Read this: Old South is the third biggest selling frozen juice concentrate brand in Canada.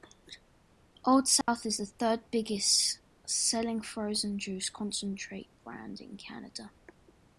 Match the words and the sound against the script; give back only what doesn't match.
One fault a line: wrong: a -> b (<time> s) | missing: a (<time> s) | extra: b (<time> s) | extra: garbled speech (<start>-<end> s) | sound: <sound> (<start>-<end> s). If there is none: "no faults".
sound: dropout (1.4-1.5 s)